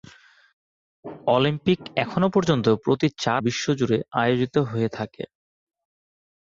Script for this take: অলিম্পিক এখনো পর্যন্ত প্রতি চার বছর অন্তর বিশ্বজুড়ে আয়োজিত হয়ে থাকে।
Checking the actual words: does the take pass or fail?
fail